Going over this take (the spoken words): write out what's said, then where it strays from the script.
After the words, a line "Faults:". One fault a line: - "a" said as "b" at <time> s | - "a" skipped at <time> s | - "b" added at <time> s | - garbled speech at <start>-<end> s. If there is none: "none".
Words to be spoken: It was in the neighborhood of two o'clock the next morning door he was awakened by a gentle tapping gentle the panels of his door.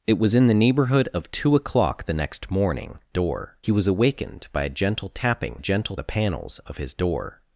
It was in the neighborhood of two o'clock the next morning door he was awakened by a gentle tapping gentle the panels of his door.
Faults:
none